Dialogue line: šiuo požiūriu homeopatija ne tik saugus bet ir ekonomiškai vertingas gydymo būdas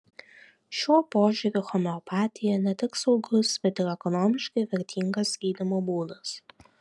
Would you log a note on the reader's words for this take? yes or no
no